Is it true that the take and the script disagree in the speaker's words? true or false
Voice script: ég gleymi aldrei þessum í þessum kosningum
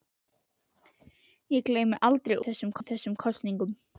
false